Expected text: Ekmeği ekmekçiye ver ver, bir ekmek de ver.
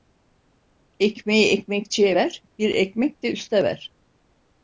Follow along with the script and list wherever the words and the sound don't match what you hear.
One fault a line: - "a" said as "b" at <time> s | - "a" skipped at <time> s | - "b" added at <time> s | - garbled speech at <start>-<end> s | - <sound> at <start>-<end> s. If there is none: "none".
- "ver" skipped at 2.4 s
- "üste" added at 3.3 s